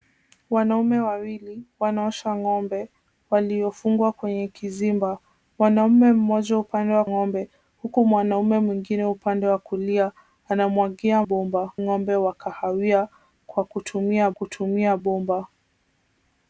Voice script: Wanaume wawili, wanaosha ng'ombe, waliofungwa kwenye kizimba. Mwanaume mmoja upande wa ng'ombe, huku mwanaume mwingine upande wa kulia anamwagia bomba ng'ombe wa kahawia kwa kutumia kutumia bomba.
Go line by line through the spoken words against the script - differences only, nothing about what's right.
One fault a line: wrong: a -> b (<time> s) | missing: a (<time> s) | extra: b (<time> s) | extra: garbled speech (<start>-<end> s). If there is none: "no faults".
no faults